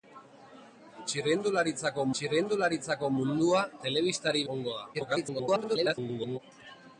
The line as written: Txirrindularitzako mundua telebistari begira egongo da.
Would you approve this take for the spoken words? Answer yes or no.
no